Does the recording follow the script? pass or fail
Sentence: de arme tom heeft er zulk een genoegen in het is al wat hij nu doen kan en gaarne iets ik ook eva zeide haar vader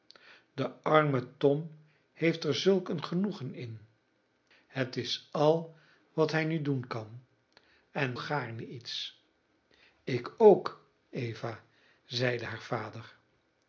pass